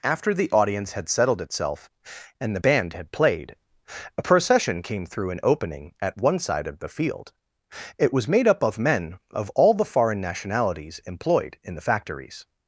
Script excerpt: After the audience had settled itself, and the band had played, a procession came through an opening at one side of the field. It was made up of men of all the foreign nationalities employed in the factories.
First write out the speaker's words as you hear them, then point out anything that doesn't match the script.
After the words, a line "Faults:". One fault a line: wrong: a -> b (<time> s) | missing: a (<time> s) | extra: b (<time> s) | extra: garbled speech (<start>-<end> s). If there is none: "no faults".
After the audience had settled itself, and the band had played, a procession came through an opening at one side of the field. It was made up of men of all the foreign nationalities employed in the factories.
Faults:
no faults